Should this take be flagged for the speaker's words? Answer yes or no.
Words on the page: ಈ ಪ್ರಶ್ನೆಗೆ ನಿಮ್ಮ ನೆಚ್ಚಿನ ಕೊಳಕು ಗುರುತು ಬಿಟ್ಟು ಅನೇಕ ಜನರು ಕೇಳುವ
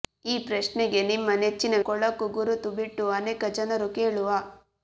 no